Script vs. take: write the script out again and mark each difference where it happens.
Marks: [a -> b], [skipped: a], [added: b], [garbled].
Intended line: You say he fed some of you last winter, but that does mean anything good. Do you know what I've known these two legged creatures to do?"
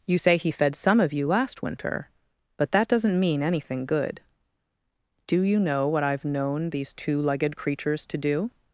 You say he fed some of you last winter, but that [does -> doesn't] mean anything good. Do you know what I've known these two legged creatures to do?"